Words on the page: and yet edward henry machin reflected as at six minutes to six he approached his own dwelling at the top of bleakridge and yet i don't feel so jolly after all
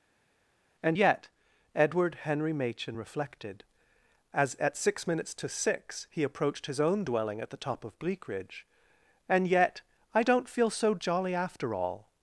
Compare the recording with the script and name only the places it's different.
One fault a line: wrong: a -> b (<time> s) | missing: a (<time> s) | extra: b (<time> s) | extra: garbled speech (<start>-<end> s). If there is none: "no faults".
no faults